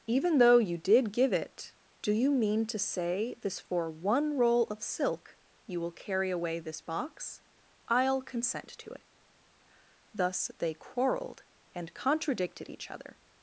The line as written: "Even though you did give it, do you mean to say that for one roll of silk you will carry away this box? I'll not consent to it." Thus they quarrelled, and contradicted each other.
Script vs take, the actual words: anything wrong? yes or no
yes